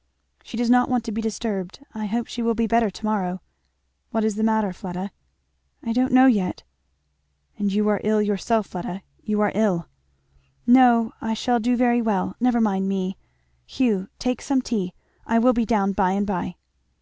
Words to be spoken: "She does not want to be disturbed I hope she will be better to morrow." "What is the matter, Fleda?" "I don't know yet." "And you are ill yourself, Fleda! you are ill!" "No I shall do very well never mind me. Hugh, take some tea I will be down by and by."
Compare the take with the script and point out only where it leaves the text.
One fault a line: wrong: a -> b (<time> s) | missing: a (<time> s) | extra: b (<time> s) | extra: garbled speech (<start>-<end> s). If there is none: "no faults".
no faults